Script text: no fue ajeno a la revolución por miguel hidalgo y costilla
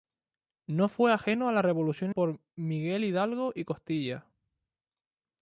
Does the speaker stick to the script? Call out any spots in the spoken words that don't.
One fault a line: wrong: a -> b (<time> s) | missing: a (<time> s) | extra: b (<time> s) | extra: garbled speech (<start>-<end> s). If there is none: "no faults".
no faults